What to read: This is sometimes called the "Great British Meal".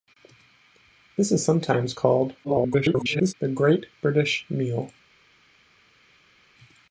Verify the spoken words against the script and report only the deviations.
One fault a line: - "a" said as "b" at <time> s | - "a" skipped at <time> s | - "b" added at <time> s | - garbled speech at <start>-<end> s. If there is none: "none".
- garbled speech at 2.4-3.3 s